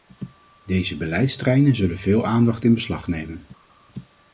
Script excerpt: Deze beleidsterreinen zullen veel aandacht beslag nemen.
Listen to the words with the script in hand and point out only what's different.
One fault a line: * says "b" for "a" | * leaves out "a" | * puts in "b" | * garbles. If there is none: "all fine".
* puts in "in"